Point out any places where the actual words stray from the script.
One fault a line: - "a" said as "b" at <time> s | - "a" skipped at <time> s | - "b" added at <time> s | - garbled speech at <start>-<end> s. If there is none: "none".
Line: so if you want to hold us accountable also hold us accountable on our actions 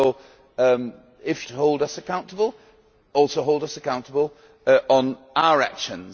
- "you want" skipped at 1.4 s